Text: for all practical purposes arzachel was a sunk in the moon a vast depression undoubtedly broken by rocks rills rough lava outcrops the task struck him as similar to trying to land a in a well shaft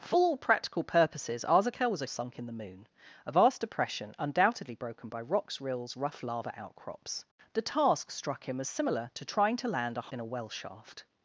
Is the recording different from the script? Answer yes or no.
no